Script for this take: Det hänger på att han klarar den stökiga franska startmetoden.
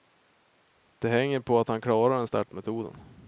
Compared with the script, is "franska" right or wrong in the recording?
wrong